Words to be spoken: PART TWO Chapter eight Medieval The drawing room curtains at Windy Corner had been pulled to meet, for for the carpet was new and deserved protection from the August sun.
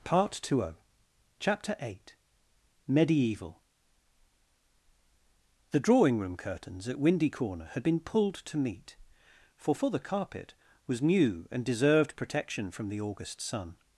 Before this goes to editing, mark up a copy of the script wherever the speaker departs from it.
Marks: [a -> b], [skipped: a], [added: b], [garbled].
PART TWO Chapter eight Medieval The drawing room curtains at Windy Corner had been pulled to meet, for for the carpet was new and deserved protection from the August sun.